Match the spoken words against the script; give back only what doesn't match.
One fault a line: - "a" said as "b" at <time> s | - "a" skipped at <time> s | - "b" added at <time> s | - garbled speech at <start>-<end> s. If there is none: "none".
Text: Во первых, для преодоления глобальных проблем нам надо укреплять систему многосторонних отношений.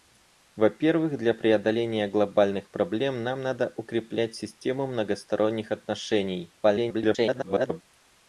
- garbled speech at 6.6-7.8 s